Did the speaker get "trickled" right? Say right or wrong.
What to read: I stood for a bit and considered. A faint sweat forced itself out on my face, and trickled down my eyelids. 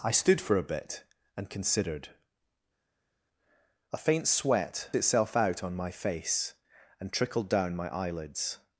right